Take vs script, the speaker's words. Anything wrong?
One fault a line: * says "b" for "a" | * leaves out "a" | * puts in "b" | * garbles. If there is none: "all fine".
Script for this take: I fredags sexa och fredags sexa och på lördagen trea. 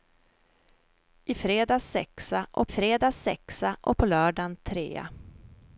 all fine